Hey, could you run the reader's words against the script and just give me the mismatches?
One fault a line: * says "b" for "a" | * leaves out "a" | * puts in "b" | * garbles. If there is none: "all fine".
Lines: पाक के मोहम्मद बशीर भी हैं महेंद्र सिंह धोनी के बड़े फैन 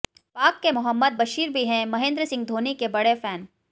all fine